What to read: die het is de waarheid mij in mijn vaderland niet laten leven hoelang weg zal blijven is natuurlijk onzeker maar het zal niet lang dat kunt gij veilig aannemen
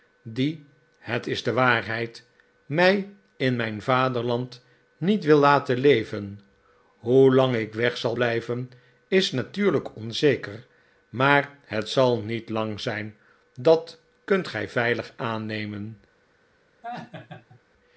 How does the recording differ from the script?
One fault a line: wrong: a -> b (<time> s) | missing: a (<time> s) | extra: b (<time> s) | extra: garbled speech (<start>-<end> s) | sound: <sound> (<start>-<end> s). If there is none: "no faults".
extra: wil (5.2 s)
extra: ik (7.5 s)
extra: zijn (12.8 s)
sound: laugh (16.8-17.6 s)